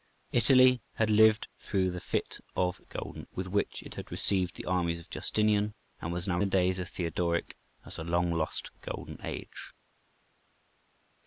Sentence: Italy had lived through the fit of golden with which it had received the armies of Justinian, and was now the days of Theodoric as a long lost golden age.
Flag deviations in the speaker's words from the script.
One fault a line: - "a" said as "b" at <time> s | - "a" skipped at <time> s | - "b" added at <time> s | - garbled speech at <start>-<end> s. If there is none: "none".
none